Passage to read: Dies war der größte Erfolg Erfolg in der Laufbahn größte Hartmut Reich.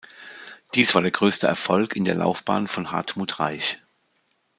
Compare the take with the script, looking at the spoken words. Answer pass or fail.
fail